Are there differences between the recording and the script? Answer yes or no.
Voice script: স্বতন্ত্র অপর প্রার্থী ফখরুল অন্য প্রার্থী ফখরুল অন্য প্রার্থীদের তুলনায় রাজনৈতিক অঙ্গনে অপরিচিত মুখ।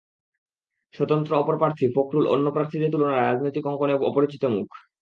yes